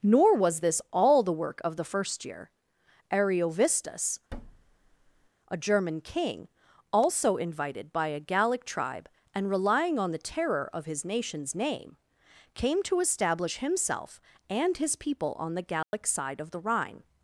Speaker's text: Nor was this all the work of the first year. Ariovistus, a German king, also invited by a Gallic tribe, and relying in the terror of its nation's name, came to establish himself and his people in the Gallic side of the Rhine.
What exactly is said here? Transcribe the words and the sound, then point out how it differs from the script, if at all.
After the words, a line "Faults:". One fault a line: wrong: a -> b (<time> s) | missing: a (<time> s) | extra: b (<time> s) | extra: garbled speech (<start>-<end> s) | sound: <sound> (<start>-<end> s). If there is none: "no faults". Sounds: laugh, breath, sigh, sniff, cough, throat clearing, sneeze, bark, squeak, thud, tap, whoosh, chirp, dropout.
Nor was this all the work of the first year. Ariovistus, a German king, also invited by a Gallic tribe, and relying on the terror of his nation's name, came to establish himself and his people on the Gallic side of the Rhine.
Faults:
sound: thud (4.3-5.3 s)
wrong: in -> on (10.0 s)
wrong: its -> his (10.8 s)
wrong: in -> on (15.4 s)
sound: dropout (15.8-15.9 s)